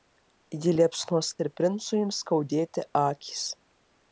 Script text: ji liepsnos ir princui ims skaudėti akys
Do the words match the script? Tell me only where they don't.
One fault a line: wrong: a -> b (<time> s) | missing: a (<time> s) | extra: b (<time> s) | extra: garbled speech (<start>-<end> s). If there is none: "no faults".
no faults